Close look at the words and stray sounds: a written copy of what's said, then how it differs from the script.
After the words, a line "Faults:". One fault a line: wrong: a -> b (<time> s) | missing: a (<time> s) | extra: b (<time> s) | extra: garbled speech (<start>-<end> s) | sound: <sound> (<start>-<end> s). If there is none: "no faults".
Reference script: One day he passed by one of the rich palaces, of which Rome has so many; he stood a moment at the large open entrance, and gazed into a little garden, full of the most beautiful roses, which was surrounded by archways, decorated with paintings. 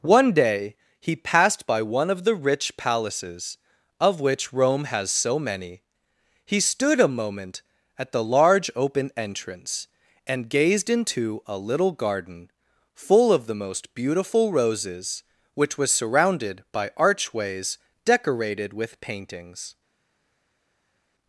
One day he passed by one of the rich palaces, of which Rome has so many; he stood a moment at the large open entrance, and gazed into a little garden, full of the most beautiful roses, which was surrounded by archways, decorated with paintings.
Faults:
no faults